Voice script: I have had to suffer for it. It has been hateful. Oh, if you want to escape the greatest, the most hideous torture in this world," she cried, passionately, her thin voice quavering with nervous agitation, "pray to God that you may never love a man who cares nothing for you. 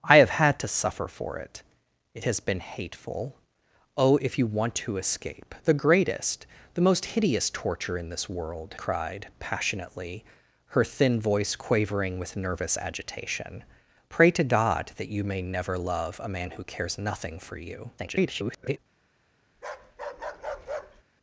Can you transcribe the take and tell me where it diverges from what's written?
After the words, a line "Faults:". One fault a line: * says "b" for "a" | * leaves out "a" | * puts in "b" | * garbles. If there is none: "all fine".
I have had to suffer for it. It has been hateful. Oh, if you want to escape the greatest, the most hideous torture in this world," cried, passionately, her thin voice quavering with nervous agitation, "pray to God that you may never love a man who cares nothing for you. [garbled]
Faults:
* leaves out "she"
* garbles